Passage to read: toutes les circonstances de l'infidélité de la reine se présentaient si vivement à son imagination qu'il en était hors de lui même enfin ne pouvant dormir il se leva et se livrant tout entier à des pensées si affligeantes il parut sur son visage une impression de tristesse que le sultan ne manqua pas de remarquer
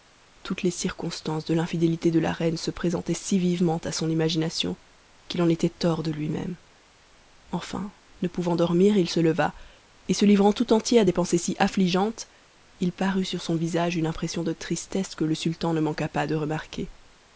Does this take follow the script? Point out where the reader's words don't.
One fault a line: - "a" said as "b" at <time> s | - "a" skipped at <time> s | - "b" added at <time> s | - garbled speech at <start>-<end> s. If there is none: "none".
none